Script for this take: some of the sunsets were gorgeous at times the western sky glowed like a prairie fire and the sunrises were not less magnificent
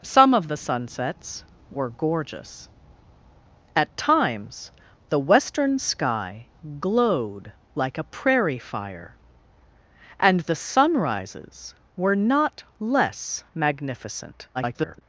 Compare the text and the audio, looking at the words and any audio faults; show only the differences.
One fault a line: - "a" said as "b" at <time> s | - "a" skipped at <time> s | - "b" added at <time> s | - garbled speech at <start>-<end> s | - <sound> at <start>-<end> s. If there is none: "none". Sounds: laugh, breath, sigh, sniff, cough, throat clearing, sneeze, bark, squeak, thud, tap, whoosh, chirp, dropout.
- garbled speech at 14.5-15.0 s